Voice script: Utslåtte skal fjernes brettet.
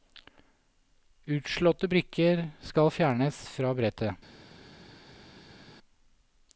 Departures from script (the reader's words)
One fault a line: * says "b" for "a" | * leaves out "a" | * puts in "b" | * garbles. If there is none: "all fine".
* puts in "brikker"
* puts in "fra"